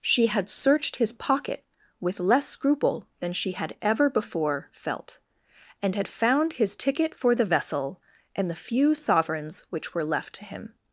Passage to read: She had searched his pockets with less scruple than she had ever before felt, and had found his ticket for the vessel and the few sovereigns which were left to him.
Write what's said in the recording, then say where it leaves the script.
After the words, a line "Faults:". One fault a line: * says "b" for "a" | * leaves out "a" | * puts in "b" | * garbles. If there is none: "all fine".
She had searched his pocket with less scruple than she had ever before felt, and had found his ticket for the vessel and the few sovereigns which were left to him.
Faults:
* says "pocket" for "pockets"